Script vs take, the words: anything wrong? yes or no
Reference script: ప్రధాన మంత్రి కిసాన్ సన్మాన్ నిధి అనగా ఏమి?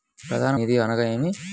yes